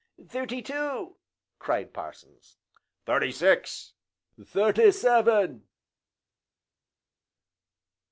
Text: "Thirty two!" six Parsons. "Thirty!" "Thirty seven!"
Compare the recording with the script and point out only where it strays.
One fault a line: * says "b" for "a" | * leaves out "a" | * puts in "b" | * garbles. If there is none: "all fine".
* says "cried" for "six"
* puts in "six"